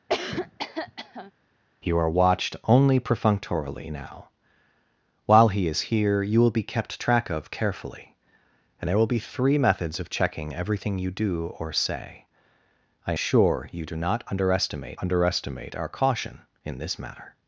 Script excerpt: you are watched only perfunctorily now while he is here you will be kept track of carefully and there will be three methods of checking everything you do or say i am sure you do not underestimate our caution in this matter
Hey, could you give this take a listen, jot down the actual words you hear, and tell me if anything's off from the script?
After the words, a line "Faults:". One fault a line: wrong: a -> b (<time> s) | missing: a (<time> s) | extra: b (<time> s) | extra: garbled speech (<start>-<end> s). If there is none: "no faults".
you are watched only perfunctorily now while he is here you will be kept track of carefully and there will be three methods of checking everything you do or say i sure you do not underestimate underestimate our caution in this matter
Faults:
missing: am (13.1 s)
extra: underestimate (15.0 s)